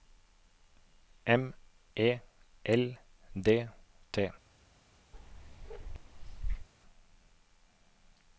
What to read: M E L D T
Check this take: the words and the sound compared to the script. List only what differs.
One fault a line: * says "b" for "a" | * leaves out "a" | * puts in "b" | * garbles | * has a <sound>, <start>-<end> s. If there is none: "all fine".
* has a bark, 5.1-6.7 s